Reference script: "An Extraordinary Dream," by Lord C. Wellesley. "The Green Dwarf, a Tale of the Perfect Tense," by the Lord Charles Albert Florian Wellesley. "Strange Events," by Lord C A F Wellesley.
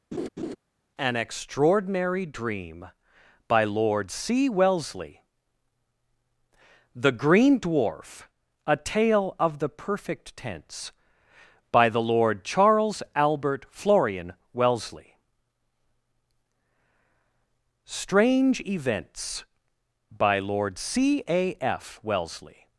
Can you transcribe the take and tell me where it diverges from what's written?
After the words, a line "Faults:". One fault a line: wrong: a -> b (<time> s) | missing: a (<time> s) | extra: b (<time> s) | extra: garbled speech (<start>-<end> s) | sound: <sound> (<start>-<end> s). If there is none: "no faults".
"An Extraordinary Dream," by Lord C. Wellesley. "The Green Dwarf, a Tale of the Perfect Tense," by the Lord Charles Albert Florian Wellesley. "Strange Events," by Lord C A F Wellesley.
Faults:
sound: laugh (0.1-0.6 s)